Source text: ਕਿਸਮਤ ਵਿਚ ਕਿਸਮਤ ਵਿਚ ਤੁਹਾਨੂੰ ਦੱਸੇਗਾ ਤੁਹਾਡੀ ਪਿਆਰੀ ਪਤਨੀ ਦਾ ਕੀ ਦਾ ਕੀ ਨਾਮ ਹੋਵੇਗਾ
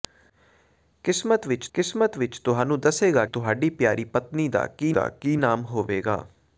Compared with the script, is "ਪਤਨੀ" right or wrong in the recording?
right